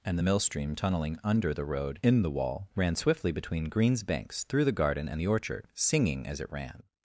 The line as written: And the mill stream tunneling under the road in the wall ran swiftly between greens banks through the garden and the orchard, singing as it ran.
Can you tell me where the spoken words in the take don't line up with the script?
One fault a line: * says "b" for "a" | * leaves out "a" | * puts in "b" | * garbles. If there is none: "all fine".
all fine